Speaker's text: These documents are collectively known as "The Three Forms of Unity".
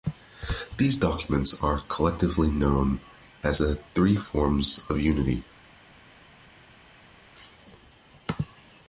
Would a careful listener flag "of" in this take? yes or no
no